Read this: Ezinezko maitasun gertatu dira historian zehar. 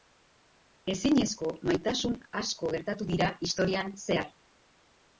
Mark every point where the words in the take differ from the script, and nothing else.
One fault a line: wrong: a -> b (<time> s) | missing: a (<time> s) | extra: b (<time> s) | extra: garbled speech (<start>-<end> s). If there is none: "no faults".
extra: asko (2.4 s)